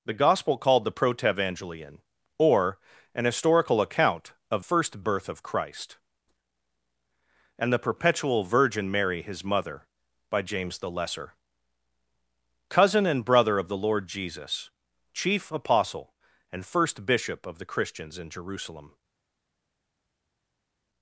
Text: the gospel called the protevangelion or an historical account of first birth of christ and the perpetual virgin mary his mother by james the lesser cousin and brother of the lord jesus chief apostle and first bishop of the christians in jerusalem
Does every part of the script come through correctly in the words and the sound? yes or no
yes